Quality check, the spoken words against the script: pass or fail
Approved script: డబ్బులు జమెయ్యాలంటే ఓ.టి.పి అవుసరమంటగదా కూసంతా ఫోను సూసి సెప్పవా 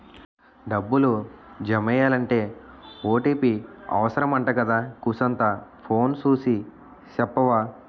pass